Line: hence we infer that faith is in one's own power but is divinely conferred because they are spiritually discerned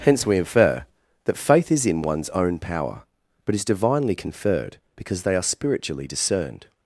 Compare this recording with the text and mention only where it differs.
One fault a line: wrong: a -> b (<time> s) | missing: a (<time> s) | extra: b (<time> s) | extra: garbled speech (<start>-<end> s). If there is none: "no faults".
no faults